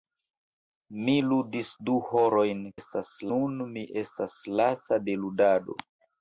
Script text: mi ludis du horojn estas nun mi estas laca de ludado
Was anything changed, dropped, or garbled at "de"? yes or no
no